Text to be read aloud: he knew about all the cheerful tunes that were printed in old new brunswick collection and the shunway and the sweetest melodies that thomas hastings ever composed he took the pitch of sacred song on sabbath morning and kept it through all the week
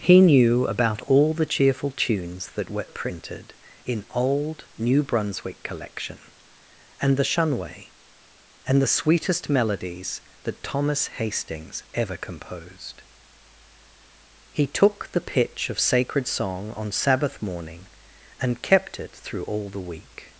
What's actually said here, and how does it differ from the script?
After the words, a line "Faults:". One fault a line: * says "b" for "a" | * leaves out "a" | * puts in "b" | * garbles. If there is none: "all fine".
he knew about all the cheerful tunes that were printed in old new brunswick collection and the shunway and the sweetest melodies that thomas hastings ever composed he took the pitch of sacred song on sabbath morning and kept it through all the week
Faults:
all fine